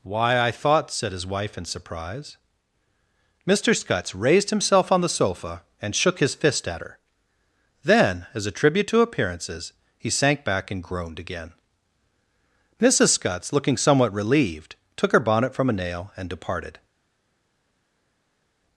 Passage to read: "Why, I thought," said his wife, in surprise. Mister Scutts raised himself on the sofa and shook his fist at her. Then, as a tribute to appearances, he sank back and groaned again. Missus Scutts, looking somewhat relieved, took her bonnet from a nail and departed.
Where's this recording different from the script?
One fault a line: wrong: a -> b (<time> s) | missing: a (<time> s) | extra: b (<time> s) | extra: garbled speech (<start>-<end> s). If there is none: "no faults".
no faults